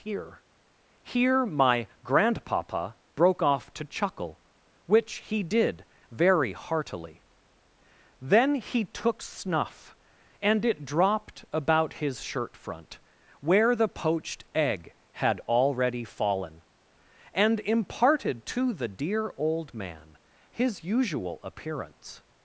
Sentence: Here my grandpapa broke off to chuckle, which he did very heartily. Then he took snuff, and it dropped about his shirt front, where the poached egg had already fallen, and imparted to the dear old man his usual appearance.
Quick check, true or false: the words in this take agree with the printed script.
false